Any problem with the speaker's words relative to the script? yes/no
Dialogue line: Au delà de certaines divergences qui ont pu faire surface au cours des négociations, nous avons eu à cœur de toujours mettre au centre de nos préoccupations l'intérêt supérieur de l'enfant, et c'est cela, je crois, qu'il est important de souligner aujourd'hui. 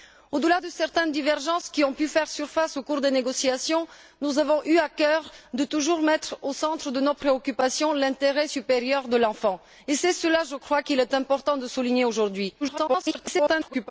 yes